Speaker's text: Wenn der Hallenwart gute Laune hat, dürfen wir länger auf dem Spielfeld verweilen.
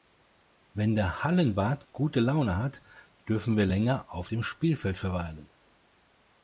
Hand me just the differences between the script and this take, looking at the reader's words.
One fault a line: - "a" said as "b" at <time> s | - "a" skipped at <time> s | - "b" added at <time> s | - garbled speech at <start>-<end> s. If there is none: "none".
none